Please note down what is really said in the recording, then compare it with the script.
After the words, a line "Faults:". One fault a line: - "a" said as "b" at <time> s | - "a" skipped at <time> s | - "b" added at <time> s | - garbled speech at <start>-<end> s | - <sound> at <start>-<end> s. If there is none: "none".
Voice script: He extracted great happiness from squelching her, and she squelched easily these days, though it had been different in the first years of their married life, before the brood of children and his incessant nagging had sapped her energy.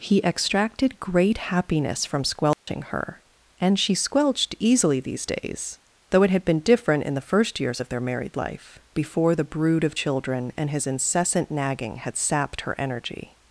He extracted great happiness from squelching her, and she squelched easily these days, though it had been different in the first years of their married life, before the brood of children and his incessant nagging had sapped her energy.
Faults:
- dropout at 2.5-2.7 s